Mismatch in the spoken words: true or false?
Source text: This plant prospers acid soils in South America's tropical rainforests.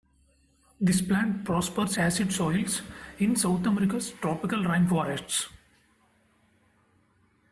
false